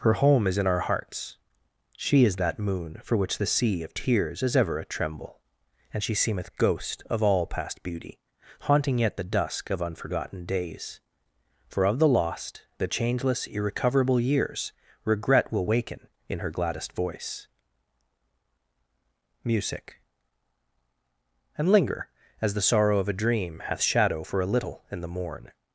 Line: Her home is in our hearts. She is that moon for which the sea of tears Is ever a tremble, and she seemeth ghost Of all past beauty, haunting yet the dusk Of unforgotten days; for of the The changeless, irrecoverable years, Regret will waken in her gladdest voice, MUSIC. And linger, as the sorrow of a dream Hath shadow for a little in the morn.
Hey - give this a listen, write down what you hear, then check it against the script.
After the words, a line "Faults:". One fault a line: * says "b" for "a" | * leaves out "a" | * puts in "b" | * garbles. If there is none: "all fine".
Her home is in our hearts. She is that moon for which the sea of tears Is ever a tremble, and she seemeth ghost Of all past beauty, haunting yet the dusk Of unforgotten days; for of the lost, The changeless, irrecoverable years, Regret will waken in her gladdest voice, MUSIC. And linger, as the sorrow of a dream Hath shadow for a little in the morn.
Faults:
* puts in "lost"